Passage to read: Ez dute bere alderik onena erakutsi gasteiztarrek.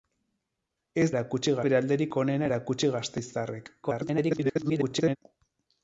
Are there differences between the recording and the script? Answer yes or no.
yes